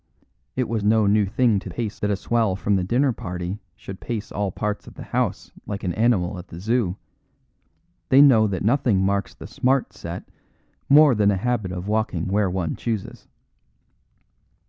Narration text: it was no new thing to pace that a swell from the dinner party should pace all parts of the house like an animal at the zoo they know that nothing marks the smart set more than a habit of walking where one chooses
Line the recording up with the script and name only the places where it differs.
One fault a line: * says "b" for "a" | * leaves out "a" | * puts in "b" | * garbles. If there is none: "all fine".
all fine